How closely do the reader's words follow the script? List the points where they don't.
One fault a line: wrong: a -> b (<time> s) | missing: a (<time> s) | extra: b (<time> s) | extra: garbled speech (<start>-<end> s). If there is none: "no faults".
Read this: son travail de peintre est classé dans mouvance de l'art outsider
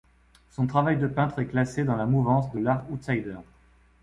extra: la (1.9 s)